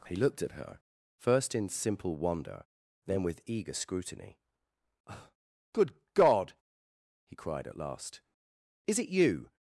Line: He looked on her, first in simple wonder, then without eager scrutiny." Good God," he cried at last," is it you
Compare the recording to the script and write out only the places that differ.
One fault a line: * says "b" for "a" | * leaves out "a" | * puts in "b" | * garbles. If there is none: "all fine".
* says "at" for "on"
* says "with" for "without"